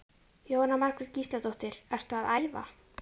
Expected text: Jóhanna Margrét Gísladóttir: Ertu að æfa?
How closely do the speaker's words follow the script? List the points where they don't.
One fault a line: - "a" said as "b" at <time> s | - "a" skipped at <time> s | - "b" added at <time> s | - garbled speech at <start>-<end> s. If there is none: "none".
none